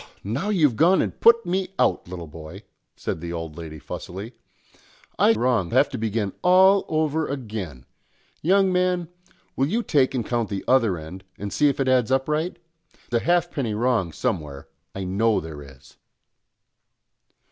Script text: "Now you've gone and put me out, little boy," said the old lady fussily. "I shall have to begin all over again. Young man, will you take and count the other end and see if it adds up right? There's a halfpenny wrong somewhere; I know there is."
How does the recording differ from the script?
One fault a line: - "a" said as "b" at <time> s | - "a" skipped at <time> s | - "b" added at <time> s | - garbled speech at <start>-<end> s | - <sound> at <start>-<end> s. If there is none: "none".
- "shall" said as "wrong" at 5.3 s
- "There's" skipped at 12.6 s